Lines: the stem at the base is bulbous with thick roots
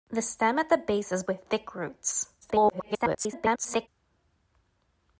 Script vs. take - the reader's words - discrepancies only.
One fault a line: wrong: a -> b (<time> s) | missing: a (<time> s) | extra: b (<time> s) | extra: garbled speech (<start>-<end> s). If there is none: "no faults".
missing: bulbous (1.2 s)
extra: garbled speech (2.4-3.9 s)